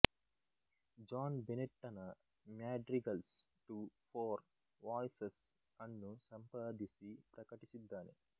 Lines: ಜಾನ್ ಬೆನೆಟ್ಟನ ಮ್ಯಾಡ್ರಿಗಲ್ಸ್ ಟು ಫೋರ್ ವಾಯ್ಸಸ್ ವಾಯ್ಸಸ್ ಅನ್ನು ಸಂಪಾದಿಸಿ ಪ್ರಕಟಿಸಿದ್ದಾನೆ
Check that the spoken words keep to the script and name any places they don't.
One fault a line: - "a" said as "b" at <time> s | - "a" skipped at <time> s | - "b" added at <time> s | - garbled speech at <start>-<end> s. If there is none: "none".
- "ವಾಯ್ಸಸ್" skipped at 5.4 s